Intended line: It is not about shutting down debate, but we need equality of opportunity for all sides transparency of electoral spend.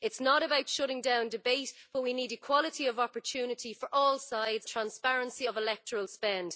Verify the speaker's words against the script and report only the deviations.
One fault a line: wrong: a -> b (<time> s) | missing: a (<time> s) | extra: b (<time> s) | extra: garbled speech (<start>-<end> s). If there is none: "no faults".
no faults